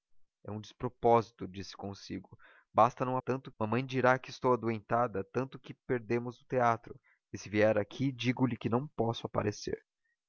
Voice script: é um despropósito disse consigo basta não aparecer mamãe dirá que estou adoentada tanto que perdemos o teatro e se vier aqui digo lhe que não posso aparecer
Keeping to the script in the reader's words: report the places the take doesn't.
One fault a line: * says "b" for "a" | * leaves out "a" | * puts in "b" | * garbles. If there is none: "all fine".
* says "tanto" for "aparecer"